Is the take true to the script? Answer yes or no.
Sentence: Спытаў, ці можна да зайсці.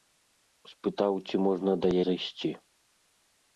yes